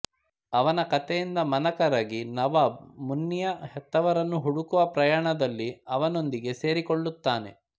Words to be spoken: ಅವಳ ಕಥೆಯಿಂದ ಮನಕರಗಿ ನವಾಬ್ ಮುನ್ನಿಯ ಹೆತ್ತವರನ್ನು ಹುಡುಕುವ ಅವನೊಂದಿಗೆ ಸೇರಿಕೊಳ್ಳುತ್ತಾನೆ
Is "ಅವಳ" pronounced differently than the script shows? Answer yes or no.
yes